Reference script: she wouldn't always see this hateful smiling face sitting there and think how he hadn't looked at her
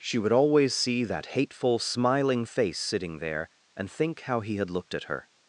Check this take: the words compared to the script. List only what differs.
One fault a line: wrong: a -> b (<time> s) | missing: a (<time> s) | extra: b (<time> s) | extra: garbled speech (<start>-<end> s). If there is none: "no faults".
wrong: wouldn't -> would (0.2 s)
wrong: this -> that (1.0 s)
wrong: hadn't -> had (4.6 s)